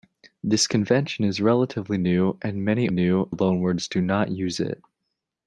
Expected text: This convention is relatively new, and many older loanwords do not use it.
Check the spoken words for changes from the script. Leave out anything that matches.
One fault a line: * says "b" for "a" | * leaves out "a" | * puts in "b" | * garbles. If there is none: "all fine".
* says "new" for "older"